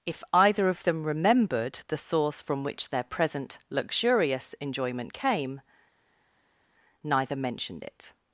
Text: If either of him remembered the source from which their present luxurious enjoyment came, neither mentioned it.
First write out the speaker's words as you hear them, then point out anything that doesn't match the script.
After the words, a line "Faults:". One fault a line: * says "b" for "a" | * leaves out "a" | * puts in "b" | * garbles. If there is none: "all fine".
If either of them remembered the source from which their present luxurious enjoyment came, neither mentioned it.
Faults:
* says "them" for "him"